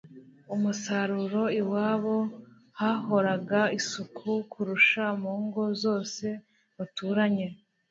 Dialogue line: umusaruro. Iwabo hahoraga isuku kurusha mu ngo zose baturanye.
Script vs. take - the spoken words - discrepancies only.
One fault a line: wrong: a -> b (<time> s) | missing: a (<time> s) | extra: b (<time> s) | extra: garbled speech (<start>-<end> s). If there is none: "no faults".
no faults